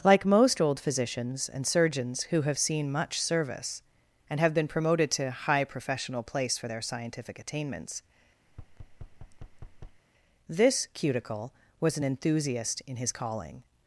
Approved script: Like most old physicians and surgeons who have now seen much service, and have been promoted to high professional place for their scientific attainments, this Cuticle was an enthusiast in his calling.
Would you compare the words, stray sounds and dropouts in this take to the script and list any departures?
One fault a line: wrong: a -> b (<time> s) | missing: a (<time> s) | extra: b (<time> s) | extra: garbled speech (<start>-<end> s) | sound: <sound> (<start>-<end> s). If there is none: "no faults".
missing: now (2.6 s)
sound: thud (8.5-10.0 s)